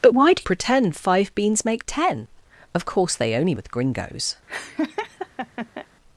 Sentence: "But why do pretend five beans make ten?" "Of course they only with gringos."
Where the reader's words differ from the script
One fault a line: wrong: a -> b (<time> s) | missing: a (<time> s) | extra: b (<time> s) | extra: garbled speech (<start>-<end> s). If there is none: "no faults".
no faults